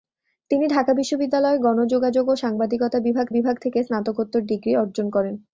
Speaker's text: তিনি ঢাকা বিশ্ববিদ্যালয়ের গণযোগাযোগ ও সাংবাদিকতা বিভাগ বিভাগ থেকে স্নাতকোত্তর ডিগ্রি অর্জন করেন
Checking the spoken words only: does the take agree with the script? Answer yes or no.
yes